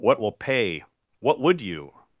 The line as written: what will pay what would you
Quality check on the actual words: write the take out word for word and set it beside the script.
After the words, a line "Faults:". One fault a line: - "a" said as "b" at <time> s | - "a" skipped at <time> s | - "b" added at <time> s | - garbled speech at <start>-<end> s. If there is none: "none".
what will pay what would you
Faults:
none